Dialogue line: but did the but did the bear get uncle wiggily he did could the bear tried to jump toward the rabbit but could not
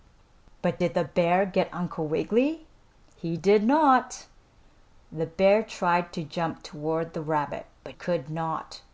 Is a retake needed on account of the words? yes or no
yes